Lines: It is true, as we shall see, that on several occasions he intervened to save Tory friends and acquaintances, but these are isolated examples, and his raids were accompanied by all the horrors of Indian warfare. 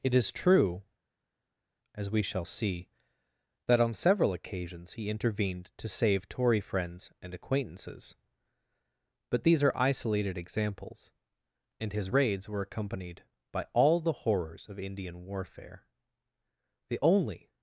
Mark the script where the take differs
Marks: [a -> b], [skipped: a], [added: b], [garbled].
It is true, as we shall see, that on several occasions he intervened to save Tory friends and acquaintances, but these are isolated examples, and his raids were accompanied by all the horrors of Indian warfare. [added: The only]